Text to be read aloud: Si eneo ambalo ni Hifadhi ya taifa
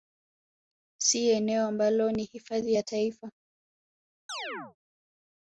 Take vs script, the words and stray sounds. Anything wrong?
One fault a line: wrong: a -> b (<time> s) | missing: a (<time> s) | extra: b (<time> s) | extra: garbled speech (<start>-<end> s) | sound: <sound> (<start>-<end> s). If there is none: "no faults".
sound: chirp (4.3-4.8 s)